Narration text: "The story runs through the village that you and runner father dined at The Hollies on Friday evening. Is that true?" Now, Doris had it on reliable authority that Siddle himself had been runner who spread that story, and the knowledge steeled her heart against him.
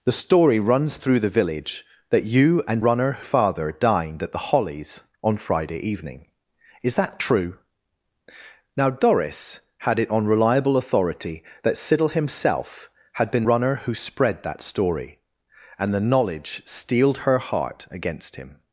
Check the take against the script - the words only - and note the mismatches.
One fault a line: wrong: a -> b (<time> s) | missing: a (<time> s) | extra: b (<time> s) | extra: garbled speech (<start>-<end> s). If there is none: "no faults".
no faults